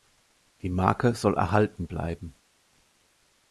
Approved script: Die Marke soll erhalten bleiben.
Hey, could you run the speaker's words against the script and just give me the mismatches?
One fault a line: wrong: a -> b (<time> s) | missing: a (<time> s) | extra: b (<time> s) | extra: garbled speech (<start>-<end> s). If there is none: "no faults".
no faults